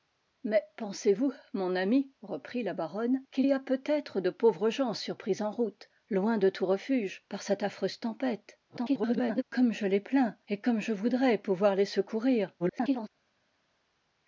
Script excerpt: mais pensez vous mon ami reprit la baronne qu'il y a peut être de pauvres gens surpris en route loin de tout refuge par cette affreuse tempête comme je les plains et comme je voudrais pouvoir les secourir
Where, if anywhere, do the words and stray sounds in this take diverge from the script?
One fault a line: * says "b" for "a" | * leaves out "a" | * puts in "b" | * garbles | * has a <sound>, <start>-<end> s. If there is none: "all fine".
* garbles
* garbles